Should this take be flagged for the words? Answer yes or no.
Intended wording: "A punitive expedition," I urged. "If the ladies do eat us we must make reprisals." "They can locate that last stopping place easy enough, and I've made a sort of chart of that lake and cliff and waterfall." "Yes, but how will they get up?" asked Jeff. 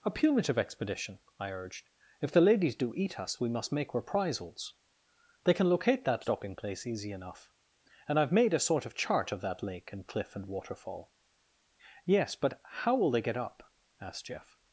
yes